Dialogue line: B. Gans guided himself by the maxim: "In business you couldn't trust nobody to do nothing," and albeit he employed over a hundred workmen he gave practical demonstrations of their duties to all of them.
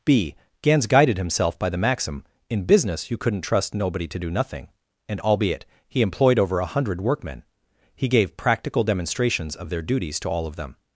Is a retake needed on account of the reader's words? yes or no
no